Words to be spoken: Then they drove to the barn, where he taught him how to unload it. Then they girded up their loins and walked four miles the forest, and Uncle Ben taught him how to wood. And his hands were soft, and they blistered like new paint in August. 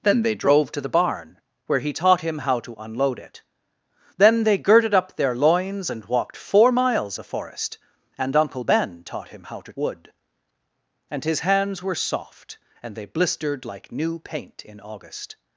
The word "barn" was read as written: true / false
true